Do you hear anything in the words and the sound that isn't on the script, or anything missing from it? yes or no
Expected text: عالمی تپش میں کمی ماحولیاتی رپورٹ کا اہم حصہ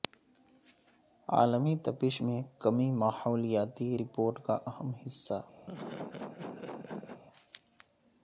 yes